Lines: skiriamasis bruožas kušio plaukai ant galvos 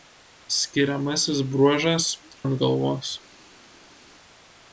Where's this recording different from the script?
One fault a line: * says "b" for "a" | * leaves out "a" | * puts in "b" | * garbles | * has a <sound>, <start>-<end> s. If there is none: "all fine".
* leaves out "kušio plaukai"